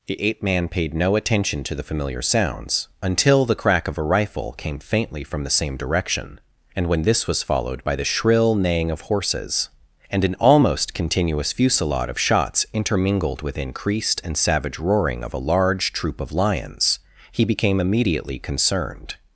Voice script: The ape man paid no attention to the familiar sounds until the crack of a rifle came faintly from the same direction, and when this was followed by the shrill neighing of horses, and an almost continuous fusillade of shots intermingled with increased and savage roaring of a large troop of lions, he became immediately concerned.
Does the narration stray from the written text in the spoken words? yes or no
no